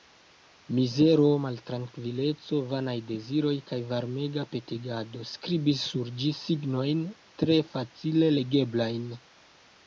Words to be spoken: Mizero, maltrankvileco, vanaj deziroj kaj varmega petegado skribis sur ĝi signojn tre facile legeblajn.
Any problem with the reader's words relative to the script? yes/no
no